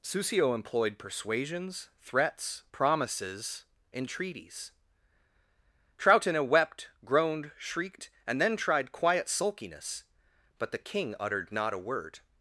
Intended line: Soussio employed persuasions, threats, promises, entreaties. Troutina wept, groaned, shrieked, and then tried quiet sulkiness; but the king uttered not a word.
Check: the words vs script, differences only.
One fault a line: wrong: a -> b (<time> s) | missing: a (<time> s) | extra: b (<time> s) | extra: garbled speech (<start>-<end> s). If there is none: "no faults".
no faults